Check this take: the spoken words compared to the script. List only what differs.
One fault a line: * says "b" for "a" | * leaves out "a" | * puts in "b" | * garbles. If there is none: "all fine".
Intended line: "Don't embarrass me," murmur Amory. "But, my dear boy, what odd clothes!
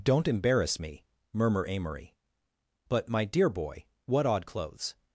all fine